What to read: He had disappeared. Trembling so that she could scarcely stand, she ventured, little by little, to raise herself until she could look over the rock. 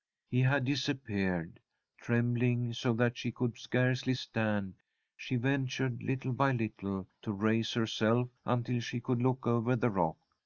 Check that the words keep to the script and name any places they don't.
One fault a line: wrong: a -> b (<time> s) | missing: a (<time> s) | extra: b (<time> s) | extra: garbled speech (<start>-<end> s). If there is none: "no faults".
no faults